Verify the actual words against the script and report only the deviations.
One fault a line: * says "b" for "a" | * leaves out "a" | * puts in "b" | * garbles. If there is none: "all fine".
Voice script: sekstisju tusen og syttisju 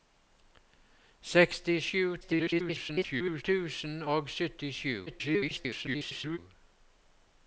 * garbles
* garbles